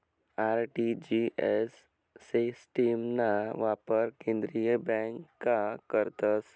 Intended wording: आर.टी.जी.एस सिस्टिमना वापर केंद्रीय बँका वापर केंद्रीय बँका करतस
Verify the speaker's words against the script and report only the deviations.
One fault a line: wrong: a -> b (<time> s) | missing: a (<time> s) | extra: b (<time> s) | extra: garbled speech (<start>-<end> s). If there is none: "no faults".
missing: वापर केंद्रीय बँका (5.6 s)